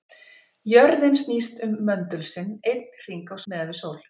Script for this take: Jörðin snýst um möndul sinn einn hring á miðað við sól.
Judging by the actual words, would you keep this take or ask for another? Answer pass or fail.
pass